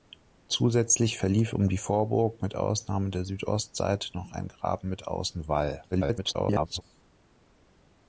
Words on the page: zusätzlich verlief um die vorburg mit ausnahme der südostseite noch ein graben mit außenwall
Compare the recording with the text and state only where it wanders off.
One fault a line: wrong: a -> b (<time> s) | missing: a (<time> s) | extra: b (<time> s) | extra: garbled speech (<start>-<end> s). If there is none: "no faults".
extra: garbled speech (5.9-6.8 s)